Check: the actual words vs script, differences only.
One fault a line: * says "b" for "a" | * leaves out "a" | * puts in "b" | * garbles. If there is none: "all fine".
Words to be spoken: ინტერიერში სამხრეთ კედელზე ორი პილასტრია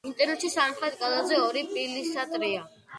all fine